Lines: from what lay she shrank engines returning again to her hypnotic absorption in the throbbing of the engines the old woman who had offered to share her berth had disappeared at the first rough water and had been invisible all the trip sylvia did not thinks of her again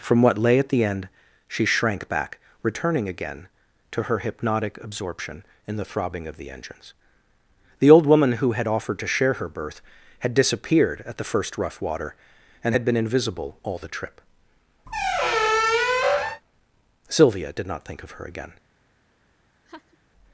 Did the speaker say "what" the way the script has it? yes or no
yes